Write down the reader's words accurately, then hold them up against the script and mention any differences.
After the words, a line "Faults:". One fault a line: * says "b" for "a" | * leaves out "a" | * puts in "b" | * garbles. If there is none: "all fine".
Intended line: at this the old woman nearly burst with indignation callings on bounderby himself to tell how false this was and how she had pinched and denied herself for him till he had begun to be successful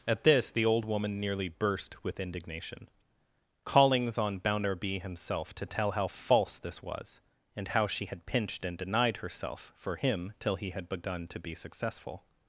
at this the old woman nearly burst with indignation callings on bounderby himself to tell how false this was and how she had pinched and denied herself for him till he had begun to be successful
Faults:
all fine